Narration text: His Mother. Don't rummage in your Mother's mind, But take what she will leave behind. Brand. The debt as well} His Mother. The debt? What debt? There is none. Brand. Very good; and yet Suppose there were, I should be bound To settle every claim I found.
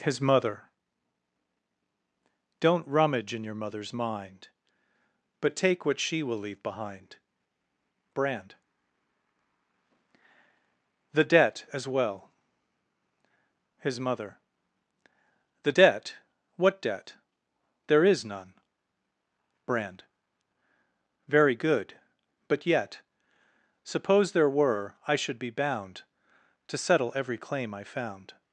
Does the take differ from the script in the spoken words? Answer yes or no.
yes